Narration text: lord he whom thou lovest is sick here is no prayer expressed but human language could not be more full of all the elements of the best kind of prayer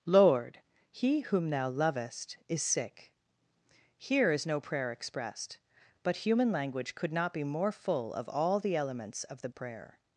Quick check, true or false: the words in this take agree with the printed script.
false